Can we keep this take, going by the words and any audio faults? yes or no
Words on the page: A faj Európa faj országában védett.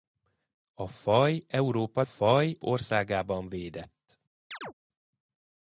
no